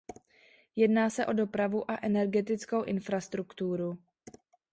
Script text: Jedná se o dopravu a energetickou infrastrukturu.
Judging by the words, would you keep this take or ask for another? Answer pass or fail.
pass